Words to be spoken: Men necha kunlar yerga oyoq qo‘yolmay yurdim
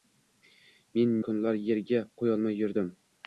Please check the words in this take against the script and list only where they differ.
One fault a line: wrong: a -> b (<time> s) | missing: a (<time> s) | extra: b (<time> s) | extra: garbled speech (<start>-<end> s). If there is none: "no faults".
missing: necha (1.1 s)
missing: oyoq (2.0 s)